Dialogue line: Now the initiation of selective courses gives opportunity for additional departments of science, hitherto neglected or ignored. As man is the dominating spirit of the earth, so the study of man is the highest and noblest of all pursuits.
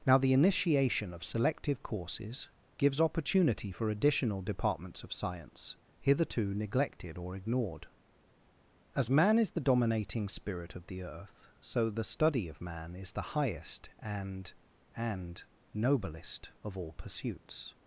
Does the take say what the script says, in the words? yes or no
no